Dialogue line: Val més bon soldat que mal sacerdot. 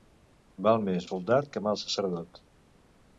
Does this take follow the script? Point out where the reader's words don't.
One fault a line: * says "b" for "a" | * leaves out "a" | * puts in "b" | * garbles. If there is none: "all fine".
* leaves out "bon"